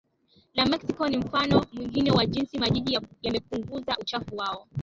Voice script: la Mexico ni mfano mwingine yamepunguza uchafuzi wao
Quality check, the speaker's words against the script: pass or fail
fail